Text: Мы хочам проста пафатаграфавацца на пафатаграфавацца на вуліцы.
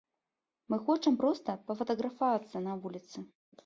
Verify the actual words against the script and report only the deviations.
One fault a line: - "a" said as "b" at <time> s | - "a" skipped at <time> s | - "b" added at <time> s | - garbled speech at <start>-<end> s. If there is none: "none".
- "пафатаграфавацца на" skipped at 2.8 s